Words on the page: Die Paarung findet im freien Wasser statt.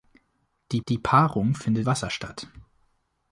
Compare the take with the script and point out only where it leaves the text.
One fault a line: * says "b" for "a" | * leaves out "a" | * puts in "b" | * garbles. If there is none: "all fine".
* puts in "die"
* leaves out "im freien"